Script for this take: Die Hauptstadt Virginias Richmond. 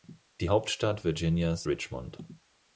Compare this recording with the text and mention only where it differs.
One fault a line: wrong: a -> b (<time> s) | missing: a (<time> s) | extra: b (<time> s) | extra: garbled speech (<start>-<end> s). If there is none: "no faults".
no faults